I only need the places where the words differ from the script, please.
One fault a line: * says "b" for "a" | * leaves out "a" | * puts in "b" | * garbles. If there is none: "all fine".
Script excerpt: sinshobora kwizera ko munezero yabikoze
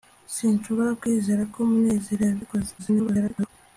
* garbles